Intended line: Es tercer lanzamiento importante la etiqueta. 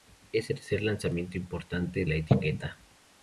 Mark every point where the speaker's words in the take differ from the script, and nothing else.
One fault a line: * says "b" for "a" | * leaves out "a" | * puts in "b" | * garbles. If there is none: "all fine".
all fine